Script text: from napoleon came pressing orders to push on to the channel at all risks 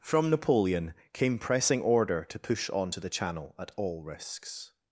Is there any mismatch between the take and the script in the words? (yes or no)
yes